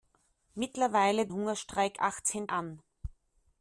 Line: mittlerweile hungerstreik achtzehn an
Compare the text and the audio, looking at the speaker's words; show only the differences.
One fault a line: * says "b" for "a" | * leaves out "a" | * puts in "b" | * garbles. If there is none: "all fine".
all fine